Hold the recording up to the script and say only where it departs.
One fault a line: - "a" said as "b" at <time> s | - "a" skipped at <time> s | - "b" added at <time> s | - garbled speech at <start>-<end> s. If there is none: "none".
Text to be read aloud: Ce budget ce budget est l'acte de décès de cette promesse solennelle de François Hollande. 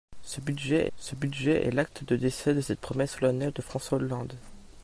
none